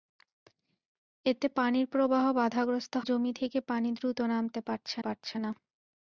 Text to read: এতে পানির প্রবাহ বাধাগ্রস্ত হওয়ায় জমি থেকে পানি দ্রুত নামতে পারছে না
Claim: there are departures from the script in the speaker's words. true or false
true